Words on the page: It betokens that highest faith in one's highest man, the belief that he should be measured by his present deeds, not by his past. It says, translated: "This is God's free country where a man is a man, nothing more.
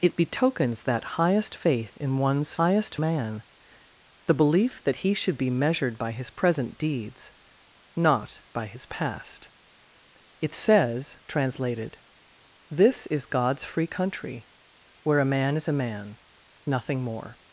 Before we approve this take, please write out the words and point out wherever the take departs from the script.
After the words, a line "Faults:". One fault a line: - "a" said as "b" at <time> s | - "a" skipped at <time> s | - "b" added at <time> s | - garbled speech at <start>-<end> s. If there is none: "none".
It betokens that highest faith in one's highest man, the belief that he should be measured by his present deeds, not by his past. It says, translated: "This is God's free country where a man is a man, nothing more.
Faults:
none